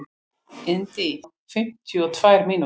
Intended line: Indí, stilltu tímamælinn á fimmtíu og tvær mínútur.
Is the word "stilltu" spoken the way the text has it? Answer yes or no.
no